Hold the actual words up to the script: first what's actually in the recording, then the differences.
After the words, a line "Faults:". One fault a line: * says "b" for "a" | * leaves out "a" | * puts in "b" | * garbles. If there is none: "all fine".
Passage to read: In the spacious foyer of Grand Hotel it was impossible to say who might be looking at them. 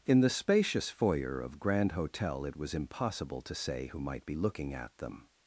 In the spacious foyer of Grand Hotel it was impossible to say who might be looking at them.
Faults:
all fine